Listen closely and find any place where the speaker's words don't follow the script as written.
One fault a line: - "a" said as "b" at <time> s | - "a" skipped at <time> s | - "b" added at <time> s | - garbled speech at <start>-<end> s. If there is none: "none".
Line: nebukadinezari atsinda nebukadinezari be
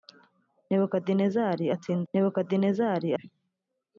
none